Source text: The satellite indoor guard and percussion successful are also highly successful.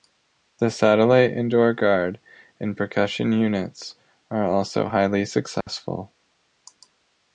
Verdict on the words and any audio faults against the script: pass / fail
fail